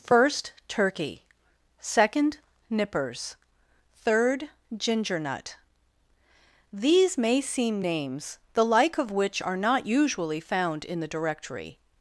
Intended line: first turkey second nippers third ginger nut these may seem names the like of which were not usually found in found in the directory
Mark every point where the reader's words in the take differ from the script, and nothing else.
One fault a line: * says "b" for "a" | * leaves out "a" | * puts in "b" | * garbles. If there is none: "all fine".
* says "are" for "were"
* leaves out "found in"